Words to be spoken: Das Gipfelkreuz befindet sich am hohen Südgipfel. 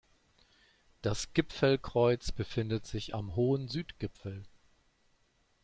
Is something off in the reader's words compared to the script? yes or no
no